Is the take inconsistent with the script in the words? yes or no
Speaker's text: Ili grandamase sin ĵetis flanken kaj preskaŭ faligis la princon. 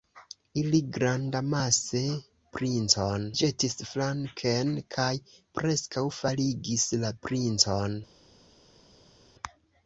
yes